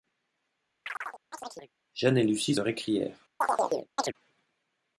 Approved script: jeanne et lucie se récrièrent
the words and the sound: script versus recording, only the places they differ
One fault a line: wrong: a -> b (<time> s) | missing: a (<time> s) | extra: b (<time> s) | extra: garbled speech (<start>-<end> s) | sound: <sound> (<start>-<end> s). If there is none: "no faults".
sound: chirp (0.8-1.7 s)
missing: se (2.5 s)
sound: chirp (3.4-4.1 s)